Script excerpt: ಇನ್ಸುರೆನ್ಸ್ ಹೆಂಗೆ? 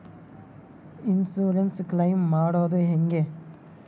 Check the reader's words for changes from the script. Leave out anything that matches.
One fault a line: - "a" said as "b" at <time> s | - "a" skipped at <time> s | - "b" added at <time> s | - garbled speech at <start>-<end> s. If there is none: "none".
- "ಕ್ಲೈಮ್ ಮಾಡದು" added at 1.9 s